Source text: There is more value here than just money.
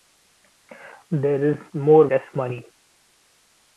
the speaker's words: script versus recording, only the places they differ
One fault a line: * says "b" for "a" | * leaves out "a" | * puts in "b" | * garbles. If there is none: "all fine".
* leaves out "value here than"